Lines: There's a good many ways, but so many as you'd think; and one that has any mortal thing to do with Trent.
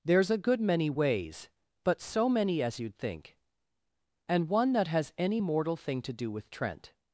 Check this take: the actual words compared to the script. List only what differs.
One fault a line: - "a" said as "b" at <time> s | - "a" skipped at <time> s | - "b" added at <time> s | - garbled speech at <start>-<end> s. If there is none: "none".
none